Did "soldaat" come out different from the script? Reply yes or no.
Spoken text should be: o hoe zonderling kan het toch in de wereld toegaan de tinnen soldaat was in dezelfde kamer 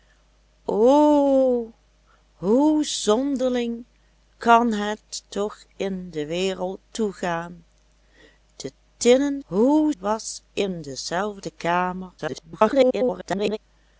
yes